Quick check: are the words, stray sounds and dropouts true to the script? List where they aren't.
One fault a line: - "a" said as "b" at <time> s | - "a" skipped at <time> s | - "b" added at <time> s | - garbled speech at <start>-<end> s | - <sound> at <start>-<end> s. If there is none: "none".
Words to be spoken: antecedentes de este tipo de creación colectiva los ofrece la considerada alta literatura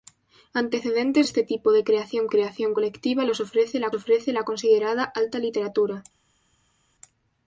- "de" skipped at 1.3 s
- "creación" added at 2.3 s
- "ofrece la" added at 3.9 s